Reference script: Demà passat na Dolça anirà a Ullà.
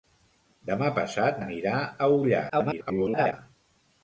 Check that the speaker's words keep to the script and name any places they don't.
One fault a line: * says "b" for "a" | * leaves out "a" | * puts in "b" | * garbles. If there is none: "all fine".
* leaves out "na Dolça"
* garbles